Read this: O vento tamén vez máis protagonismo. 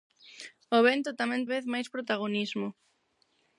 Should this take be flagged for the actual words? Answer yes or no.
no